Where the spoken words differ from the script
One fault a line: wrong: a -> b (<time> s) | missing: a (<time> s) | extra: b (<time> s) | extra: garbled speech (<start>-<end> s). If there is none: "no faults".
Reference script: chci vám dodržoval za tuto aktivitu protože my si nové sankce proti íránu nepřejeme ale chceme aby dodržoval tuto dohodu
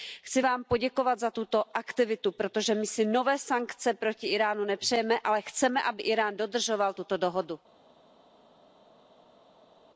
wrong: dodržoval -> poděkovat (0.6 s)
extra: írán (6.0 s)